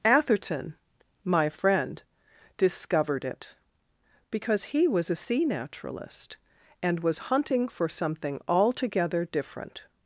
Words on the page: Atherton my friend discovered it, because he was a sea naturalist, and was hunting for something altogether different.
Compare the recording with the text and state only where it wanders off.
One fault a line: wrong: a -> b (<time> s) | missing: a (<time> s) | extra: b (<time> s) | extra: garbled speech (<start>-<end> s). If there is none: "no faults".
no faults